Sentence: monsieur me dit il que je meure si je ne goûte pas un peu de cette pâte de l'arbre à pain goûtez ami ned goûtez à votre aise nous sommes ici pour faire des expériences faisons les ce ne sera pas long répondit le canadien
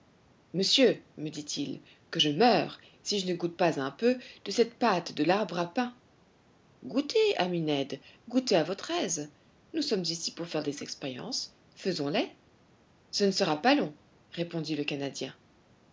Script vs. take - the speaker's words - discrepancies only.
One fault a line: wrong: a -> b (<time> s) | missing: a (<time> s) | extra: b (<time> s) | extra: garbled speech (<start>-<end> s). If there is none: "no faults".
no faults